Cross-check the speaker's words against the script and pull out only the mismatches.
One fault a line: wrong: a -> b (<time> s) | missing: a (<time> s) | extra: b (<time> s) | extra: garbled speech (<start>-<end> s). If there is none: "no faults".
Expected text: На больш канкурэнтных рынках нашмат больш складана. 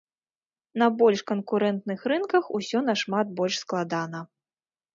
extra: усё (2.6 s)